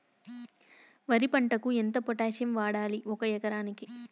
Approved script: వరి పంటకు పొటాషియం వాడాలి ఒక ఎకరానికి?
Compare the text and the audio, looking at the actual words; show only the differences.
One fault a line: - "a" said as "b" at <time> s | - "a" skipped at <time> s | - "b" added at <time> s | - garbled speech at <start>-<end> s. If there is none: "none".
- "ఎంత" added at 1.8 s